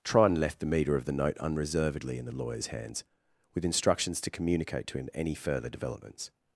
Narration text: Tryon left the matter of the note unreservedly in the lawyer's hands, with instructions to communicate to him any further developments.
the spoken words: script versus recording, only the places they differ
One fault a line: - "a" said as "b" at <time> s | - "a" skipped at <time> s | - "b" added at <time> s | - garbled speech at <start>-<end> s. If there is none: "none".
- "matter" said as "meter" at 0.7 s